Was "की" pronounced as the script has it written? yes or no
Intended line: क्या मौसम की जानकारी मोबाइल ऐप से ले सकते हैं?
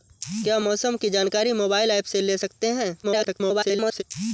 yes